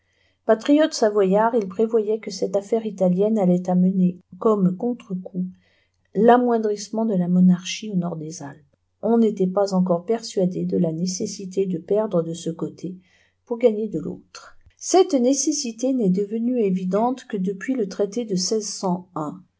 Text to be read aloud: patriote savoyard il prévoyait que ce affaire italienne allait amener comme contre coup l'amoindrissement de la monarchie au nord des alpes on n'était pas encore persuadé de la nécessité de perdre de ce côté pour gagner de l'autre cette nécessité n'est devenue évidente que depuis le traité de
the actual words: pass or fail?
fail